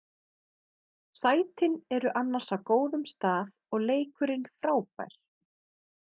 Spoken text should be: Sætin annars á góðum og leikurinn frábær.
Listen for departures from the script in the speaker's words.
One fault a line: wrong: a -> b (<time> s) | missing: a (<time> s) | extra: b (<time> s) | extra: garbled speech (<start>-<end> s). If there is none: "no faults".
extra: eru (2.0 s)
extra: stað (3.1 s)